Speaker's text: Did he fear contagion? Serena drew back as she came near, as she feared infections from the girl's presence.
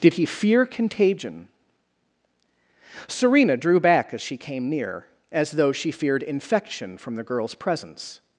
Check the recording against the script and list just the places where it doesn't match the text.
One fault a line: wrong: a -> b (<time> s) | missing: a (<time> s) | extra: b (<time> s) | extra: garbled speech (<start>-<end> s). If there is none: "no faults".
extra: though (5.5 s)
wrong: infections -> infection (6.2 s)